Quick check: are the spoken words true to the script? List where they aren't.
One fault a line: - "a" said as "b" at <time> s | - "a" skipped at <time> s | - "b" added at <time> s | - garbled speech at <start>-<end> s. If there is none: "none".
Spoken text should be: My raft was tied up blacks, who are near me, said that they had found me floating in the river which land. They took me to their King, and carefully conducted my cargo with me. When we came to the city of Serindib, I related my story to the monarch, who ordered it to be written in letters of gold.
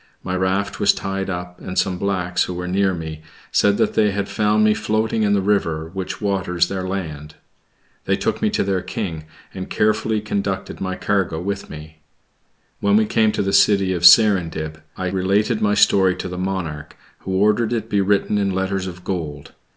- "and some" added at 1.6 s
- "are" said as "were" at 2.5 s
- "waters their" added at 6.2 s